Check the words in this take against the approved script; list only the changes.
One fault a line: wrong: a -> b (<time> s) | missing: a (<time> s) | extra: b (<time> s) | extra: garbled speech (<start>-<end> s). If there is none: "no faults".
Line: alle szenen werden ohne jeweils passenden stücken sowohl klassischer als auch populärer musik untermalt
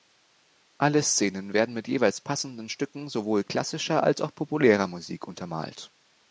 wrong: ohne -> mit (1.8 s)